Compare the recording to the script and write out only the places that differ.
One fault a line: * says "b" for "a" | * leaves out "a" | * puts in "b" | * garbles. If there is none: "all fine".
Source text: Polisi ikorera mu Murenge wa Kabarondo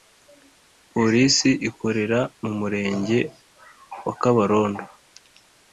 all fine